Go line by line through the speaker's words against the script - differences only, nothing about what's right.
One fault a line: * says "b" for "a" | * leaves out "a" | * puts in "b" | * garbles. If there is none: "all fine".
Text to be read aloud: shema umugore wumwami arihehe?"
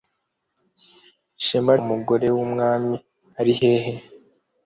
all fine